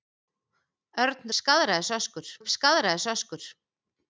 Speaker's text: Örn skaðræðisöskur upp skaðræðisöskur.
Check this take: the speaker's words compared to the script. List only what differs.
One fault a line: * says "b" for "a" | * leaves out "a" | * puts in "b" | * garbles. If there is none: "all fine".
all fine